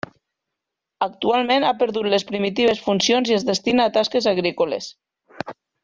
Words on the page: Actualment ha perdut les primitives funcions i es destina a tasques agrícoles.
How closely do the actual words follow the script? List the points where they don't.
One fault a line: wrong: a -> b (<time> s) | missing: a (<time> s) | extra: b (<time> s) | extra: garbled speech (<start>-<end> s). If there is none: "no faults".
no faults